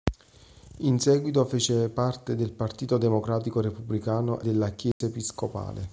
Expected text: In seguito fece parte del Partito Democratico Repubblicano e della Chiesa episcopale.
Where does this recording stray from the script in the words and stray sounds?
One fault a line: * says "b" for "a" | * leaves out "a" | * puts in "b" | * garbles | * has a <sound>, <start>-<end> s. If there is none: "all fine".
* leaves out "e"
* has a dropout, 4.9-5.0 s